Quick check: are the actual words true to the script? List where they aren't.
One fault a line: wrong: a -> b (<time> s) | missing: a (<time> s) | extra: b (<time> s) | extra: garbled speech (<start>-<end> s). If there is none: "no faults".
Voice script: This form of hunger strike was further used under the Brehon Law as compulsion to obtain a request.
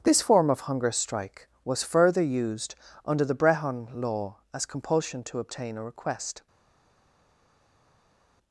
no faults